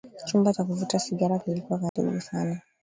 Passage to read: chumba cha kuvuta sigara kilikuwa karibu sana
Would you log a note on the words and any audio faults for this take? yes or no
yes